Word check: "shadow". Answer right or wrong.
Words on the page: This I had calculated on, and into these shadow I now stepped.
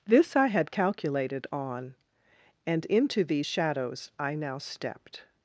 wrong